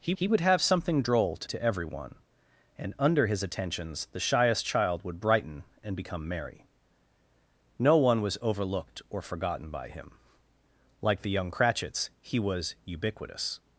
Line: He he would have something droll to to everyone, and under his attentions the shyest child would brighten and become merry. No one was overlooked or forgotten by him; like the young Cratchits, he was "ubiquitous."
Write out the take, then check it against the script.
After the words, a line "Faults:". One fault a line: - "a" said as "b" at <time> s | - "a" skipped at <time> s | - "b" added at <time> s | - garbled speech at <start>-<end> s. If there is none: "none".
He he would have something droll to to everyone, and under his attentions the shyest child would brighten and become merry. No one was overlooked or forgotten by him; like the young Cratchits, he was "ubiquitous."
Faults:
none